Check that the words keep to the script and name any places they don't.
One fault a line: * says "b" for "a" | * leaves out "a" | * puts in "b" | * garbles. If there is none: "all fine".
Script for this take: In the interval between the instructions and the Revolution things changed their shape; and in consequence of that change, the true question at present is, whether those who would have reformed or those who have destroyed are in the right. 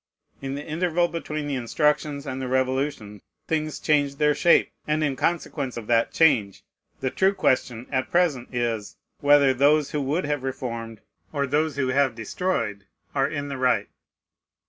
all fine